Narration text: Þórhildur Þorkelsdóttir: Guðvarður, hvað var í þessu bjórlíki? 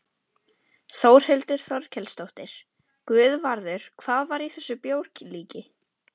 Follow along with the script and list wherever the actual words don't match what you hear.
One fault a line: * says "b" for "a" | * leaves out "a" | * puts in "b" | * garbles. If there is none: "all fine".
all fine